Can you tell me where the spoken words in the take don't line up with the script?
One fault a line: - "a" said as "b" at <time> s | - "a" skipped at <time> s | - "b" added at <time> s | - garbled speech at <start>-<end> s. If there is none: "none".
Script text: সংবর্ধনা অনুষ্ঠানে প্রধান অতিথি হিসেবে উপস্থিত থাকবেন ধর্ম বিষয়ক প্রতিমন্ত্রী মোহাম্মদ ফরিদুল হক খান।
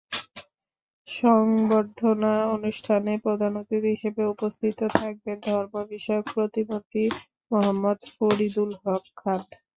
none